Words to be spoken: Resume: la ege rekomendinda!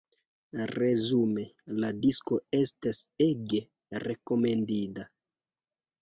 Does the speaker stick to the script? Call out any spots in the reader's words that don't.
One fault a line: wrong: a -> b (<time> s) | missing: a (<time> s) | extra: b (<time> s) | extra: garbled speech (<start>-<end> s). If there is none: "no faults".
extra: disko estas (2.0 s)